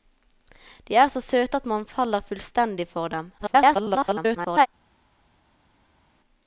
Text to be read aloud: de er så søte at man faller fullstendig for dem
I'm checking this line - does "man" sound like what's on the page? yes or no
yes